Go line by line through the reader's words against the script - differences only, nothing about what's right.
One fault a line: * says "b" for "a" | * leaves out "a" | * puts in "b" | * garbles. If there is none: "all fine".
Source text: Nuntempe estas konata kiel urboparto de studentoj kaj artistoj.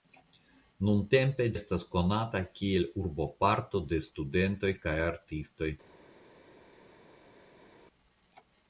all fine